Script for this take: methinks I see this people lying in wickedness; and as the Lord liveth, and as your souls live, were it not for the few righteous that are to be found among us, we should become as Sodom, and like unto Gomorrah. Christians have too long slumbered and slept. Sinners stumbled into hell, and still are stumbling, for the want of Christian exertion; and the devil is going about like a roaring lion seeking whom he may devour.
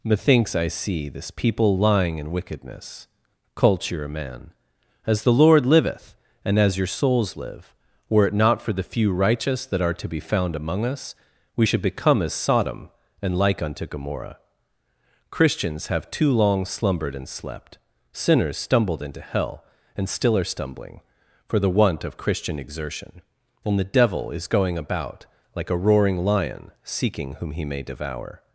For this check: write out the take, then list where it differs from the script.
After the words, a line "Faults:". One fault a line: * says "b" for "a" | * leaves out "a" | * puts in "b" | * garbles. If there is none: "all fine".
methinks I see this people lying in wickedness; culture a man as the Lord liveth, and as your souls live, were it not for the few righteous that are to be found among us, we should become as Sodom, and like unto Gomorrah. Christians have too long slumbered and slept. Sinners stumbled into hell, and still are stumbling, for the want of Christian exertion; and the devil is going about like a roaring lion seeking whom he may devour.
Faults:
* says "culture a man" for "and"